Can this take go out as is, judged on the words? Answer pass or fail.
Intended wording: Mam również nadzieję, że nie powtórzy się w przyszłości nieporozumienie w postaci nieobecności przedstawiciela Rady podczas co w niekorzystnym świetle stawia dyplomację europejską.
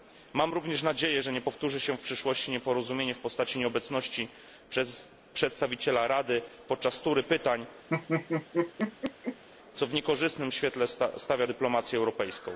fail